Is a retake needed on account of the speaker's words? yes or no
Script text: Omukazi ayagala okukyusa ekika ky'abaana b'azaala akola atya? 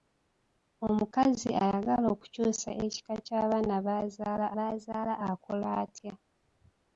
yes